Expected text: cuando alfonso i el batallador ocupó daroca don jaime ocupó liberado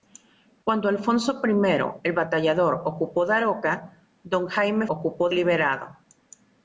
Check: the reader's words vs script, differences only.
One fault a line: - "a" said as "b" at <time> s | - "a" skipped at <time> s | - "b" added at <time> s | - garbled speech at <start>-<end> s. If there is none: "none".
none